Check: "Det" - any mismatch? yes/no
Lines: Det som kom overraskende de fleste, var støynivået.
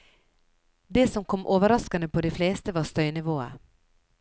no